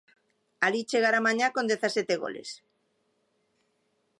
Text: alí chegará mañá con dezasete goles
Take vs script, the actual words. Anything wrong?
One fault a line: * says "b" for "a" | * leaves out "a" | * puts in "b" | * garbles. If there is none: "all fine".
all fine